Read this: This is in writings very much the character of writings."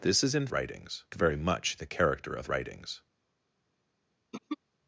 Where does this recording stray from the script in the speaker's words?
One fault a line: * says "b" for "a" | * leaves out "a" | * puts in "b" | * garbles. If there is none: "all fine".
all fine